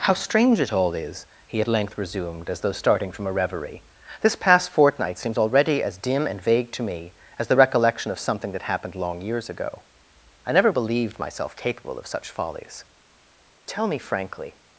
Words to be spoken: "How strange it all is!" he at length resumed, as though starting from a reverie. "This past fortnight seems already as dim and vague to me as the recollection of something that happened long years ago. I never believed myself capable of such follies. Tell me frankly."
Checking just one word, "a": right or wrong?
right